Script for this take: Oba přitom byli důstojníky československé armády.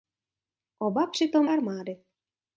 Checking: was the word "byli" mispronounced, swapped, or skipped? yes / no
yes